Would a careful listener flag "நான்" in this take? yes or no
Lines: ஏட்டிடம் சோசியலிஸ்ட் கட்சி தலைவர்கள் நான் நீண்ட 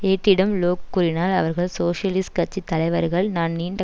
no